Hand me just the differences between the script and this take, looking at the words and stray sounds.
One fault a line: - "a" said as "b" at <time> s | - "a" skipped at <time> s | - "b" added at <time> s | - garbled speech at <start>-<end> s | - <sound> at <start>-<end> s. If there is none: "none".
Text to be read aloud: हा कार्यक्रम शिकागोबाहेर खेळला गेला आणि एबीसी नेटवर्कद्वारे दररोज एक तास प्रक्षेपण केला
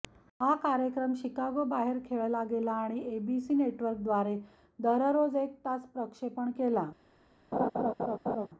- laugh at 7.5-8.5 s